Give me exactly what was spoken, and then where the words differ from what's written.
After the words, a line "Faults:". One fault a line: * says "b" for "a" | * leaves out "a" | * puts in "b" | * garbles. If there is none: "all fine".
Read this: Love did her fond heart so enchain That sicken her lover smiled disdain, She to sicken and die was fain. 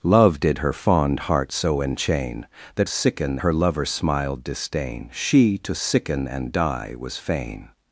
Love did her fond heart so enchain That sicken her lover smiled disdain, She to sicken and die was fain.
Faults:
all fine